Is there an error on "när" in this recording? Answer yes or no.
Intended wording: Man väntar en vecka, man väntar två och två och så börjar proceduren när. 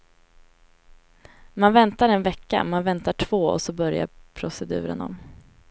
yes